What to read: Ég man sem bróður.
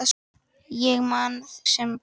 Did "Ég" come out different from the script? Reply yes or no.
no